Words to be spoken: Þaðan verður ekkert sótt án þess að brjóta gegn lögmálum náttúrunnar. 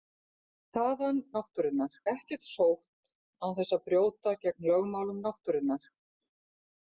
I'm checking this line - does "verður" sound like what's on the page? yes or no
no